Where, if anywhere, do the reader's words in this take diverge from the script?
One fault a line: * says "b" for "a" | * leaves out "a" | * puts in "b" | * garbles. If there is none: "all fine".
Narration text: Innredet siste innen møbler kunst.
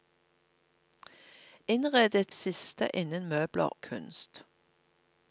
all fine